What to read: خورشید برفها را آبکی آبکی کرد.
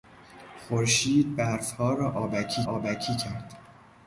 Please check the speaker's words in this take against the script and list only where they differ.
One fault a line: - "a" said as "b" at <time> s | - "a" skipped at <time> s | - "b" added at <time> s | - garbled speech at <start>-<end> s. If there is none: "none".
none